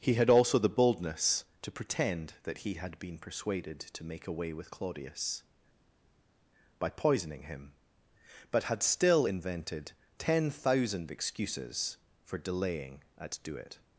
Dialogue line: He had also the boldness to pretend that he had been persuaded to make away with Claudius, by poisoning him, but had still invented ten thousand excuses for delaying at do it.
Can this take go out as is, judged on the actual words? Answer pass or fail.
pass